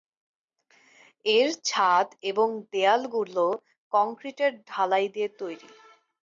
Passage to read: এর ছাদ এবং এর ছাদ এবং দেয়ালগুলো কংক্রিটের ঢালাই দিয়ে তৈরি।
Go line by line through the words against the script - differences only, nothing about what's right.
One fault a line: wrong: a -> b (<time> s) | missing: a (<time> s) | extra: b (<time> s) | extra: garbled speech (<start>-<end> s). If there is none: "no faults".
missing: এর ছাদ এবং (2.5 s)